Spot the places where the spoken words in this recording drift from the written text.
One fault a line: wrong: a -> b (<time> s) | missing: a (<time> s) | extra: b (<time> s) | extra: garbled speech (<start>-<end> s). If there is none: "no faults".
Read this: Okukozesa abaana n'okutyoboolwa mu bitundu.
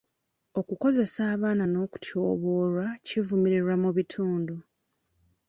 extra: kivumirirwa (3.1 s)